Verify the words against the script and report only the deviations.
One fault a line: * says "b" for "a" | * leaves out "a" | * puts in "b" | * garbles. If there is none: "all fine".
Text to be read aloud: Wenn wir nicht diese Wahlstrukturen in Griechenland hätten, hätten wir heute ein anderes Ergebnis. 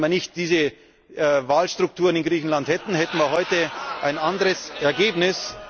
all fine